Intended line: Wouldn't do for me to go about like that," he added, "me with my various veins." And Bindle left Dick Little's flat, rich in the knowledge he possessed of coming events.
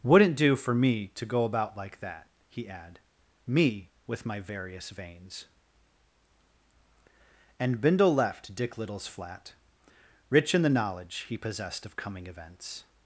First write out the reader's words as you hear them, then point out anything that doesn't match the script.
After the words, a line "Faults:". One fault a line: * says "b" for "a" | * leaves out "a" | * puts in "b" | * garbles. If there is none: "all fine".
Wouldn't do for me to go about like that," he add, "me with my various veins." And Bindle left Dick Little's flat, rich in the knowledge he possessed of coming events.
Faults:
* says "add" for "added"